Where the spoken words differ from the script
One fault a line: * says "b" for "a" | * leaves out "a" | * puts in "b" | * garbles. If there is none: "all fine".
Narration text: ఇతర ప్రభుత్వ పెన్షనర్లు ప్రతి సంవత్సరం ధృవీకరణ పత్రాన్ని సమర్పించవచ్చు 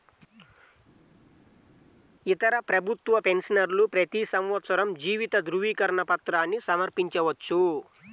* puts in "జీవిత"